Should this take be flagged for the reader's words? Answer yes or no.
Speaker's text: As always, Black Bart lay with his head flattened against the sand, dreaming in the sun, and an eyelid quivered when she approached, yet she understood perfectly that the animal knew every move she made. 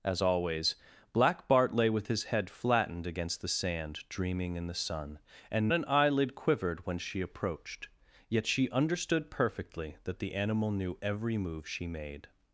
no